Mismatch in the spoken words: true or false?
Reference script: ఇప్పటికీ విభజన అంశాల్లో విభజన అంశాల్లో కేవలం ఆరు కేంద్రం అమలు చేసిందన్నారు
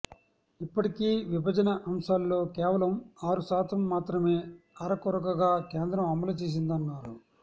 true